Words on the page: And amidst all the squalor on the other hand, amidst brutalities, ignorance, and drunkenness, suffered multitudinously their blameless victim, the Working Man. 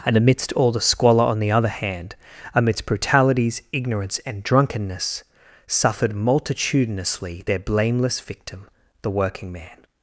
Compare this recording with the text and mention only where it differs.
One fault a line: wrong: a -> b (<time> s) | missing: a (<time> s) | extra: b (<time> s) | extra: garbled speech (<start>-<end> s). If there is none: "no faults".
no faults